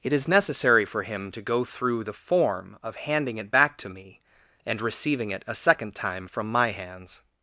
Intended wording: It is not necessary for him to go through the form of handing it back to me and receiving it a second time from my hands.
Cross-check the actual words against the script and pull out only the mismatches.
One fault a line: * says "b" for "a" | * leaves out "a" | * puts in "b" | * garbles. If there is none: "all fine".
* leaves out "not"